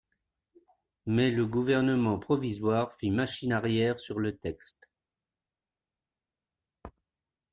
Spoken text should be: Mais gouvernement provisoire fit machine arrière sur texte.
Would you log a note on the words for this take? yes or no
yes